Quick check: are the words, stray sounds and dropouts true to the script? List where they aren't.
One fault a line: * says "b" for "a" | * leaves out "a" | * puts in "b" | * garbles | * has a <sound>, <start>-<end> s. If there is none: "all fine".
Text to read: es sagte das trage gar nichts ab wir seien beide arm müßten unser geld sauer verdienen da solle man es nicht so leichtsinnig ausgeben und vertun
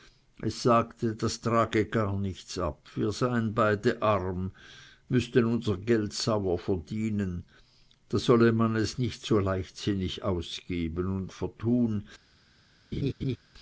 * has a laugh, 12.9-13.4 s